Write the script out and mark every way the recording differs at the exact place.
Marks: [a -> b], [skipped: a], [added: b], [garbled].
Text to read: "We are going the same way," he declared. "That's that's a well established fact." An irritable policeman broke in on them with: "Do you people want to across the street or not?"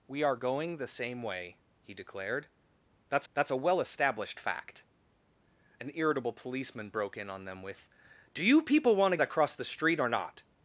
"We are going the same way," he declared. "That's that's a well established fact." An irritable policeman broke in on them with: "Do you people want to across the street or not?"